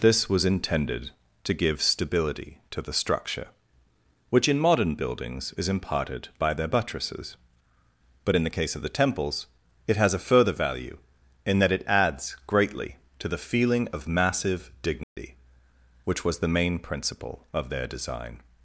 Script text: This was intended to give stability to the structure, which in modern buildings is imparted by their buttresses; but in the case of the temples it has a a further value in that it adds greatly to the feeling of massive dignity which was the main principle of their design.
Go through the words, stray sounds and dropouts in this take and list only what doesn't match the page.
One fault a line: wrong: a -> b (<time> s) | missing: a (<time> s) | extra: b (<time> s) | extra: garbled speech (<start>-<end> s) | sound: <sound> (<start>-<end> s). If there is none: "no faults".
missing: a (10.2 s)
sound: dropout (15.0-15.2 s)